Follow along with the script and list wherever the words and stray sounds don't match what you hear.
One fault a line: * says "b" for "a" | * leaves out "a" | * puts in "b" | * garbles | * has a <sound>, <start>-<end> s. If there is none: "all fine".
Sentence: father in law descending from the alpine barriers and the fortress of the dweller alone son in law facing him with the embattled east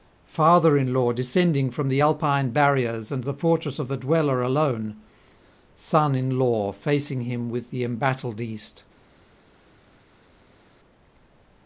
all fine